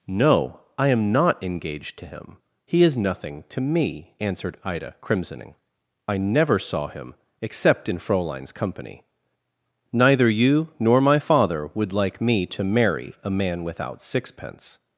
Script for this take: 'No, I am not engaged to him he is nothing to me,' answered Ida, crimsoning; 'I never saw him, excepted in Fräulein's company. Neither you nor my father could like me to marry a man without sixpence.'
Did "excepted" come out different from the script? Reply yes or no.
yes